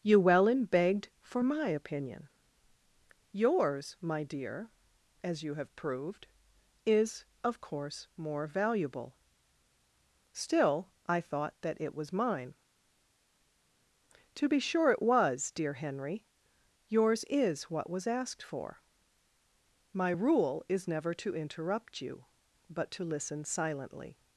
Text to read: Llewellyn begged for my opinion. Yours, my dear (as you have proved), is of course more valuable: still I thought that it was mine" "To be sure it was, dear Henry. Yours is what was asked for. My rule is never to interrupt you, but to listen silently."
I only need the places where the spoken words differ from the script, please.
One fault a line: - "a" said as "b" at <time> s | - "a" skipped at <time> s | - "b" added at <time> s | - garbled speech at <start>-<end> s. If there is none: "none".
none